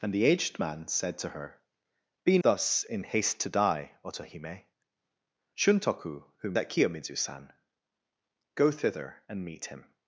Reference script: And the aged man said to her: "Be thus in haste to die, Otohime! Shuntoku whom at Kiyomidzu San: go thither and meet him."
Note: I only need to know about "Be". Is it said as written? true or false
true